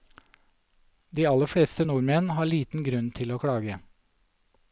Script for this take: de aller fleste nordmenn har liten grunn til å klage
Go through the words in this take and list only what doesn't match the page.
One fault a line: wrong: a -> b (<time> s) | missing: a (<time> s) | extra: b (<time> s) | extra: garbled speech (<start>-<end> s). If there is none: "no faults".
no faults